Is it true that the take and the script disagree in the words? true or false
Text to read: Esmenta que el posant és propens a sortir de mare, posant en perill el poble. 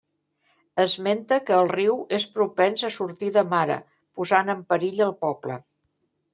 true